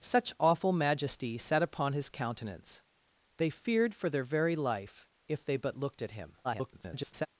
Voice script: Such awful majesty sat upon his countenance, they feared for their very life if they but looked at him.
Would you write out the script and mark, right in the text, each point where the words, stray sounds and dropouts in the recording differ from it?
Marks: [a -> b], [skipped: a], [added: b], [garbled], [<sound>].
Such awful majesty sat upon his countenance, they feared for their very life if they but looked at him. [garbled]